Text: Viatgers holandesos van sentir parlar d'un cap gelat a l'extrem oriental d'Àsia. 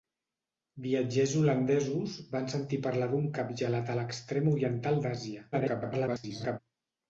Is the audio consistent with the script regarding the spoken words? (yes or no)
no